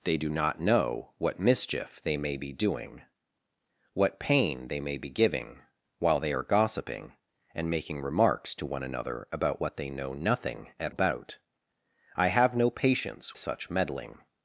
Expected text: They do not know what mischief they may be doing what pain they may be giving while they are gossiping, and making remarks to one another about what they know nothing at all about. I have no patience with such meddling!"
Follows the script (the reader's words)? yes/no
no